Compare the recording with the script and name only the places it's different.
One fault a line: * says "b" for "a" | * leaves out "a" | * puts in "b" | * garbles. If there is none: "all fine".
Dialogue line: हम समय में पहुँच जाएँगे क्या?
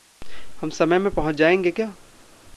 all fine